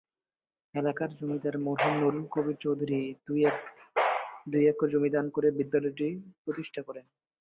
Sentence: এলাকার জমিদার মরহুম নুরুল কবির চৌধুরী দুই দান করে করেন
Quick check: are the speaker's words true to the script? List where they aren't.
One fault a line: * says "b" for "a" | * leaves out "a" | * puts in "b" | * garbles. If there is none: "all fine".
* puts in "একর জমি"
* puts in "বিদ্যালয়টি প্রতিষ্ঠা"